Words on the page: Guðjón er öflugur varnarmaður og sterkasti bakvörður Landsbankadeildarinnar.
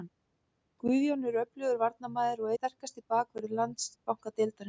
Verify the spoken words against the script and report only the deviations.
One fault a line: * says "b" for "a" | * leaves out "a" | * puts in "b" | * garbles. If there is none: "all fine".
all fine